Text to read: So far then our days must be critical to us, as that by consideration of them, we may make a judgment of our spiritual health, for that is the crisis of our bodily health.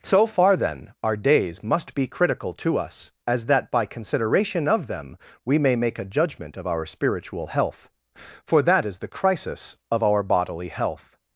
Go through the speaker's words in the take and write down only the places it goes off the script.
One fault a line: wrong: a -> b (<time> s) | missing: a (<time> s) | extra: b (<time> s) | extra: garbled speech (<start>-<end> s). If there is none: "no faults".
no faults